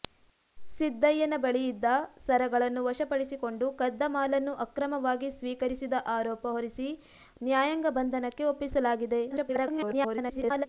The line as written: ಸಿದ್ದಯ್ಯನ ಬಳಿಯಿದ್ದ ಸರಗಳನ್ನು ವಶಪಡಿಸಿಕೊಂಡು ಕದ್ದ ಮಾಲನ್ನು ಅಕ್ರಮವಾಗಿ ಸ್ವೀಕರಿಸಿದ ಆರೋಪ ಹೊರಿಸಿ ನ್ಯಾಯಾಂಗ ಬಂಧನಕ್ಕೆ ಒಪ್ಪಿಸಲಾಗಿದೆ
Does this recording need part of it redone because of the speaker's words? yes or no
yes